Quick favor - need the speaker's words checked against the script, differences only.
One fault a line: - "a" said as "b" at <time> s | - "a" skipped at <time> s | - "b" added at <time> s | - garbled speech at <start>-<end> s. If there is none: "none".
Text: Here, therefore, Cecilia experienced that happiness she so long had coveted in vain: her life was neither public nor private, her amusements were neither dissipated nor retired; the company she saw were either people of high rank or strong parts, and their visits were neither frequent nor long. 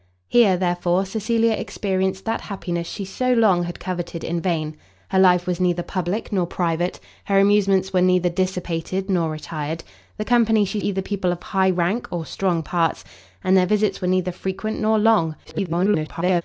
- "saw were" skipped at 10.8 s
- garbled speech at 15.4-16.4 s